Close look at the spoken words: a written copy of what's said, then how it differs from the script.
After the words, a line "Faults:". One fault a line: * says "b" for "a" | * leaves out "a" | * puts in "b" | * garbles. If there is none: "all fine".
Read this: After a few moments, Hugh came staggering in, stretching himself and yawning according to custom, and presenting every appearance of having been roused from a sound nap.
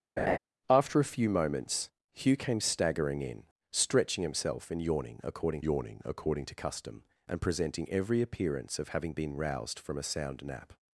After a few moments, Hugh came staggering in, stretching himself and yawning according yawning according to custom, and presenting every appearance of having been roused from a sound nap.
Faults:
* puts in "yawning according"